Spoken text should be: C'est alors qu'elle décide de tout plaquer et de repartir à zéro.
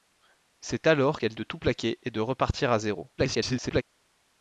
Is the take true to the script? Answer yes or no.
no